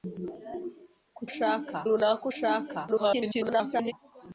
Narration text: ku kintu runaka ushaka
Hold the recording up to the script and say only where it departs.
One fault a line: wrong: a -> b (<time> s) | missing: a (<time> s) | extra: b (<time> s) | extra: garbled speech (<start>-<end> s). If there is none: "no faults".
wrong: kintu -> ushaka (1.3 s)
extra: garbled speech (2.9-3.9 s)